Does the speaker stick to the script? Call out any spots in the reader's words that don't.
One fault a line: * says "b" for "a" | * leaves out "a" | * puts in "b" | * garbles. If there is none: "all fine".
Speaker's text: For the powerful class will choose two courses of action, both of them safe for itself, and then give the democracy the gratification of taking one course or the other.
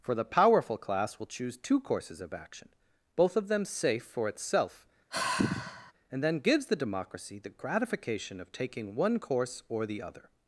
* says "gives" for "give"